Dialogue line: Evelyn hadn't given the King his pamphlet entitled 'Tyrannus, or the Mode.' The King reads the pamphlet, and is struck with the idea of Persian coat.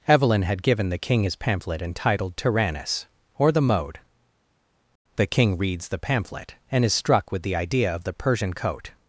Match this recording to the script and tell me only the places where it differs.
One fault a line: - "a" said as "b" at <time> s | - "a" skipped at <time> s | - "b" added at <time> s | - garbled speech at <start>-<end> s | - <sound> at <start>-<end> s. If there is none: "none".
- "hadn't" said as "had" at 0.4 s
- "the" added at 8.0 s